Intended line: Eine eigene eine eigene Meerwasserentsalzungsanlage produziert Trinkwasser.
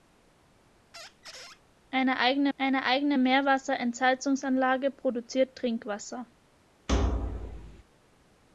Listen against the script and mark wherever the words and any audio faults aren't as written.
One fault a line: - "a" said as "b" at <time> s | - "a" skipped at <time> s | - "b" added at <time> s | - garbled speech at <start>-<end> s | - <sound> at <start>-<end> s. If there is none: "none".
- squeak at 0.9-1.6 s
- thud at 6.9-7.8 s